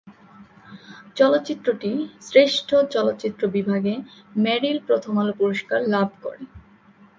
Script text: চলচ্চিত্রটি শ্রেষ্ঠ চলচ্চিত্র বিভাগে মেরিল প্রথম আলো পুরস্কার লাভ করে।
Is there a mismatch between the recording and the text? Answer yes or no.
no